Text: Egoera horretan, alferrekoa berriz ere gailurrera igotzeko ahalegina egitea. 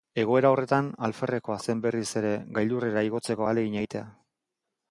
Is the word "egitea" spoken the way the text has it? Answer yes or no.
yes